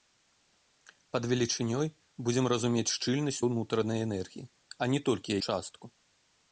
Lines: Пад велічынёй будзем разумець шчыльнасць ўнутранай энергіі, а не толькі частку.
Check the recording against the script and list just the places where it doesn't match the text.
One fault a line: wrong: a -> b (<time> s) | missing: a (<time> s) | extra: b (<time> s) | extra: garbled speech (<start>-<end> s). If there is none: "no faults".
no faults